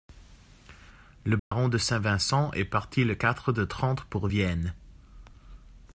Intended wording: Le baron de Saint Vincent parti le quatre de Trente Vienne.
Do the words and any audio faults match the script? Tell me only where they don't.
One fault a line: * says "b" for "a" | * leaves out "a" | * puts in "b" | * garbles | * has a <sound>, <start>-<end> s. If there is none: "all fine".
* has a dropout, 1.4-1.5 s
* puts in "est"
* puts in "pour"